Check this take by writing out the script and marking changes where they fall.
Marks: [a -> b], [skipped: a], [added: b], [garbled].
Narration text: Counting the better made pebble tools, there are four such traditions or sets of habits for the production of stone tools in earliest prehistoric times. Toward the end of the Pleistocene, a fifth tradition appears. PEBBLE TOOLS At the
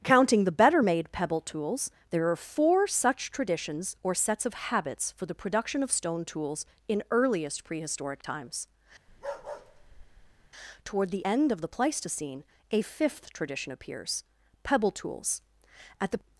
Counting the better made pebble tools, there are four such traditions or sets of habits for the production of stone tools in earliest prehistoric times. Toward the end of the Pleistocene, a fifth tradition appears. PEBBLE TOOLS At the